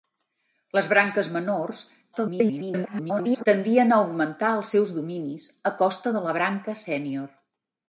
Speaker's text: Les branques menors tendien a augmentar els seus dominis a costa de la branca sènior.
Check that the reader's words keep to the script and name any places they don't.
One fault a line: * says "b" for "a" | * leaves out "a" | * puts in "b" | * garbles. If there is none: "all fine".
* garbles